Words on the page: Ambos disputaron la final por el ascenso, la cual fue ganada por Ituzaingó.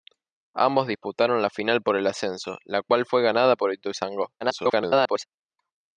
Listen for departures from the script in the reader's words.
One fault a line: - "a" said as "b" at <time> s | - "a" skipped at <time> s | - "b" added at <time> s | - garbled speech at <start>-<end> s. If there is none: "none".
- garbled speech at 4.4-5.3 s